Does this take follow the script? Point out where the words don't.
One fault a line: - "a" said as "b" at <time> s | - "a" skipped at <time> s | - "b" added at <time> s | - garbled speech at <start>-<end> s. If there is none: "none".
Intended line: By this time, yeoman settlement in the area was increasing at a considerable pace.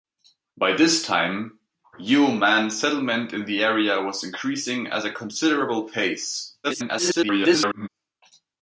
- garbled speech at 6.6-7.9 s